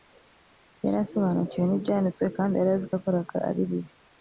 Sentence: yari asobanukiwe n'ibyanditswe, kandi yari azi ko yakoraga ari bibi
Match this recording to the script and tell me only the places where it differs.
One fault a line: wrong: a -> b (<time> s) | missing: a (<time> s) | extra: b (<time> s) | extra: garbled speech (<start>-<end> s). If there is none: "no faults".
no faults